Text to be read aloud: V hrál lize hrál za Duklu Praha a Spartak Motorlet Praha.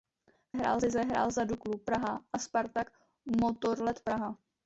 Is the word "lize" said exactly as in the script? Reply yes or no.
yes